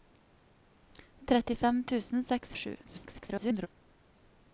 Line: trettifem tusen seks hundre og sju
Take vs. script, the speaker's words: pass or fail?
fail